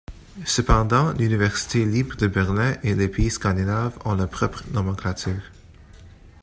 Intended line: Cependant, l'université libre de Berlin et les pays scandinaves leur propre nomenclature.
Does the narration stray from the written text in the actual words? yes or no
yes